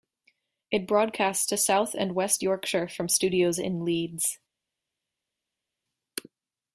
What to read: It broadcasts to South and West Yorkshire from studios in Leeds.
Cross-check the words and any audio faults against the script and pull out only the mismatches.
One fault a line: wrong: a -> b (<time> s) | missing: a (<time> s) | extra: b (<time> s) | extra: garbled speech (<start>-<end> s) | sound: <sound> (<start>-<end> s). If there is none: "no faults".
no faults